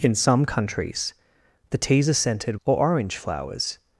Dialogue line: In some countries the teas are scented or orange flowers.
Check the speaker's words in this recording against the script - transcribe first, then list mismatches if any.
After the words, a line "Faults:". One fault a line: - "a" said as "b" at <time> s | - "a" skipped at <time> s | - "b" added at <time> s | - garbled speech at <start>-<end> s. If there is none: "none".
In some countries the teas are scented or orange flowers.
Faults:
none